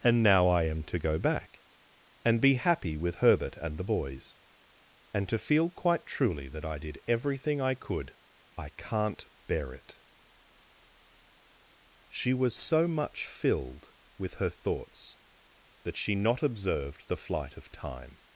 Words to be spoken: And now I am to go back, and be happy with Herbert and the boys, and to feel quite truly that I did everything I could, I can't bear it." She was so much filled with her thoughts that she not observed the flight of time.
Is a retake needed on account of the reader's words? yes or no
no